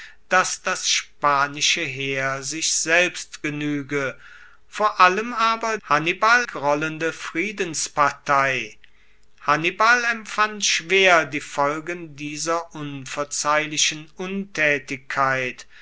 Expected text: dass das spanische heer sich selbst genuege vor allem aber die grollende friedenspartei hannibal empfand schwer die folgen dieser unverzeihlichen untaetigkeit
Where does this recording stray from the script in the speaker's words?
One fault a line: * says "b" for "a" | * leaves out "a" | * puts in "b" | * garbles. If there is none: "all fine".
* says "hannibal" for "die"